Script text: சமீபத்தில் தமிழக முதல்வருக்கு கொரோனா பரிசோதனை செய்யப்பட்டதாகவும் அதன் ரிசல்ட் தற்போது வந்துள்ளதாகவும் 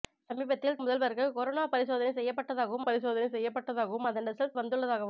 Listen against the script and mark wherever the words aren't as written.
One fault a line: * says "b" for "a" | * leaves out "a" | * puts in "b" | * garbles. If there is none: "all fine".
* leaves out "தமிழக"
* puts in "பரிசோதனை செய்யப்பட்டதாகவும்"
* leaves out "தற்போது"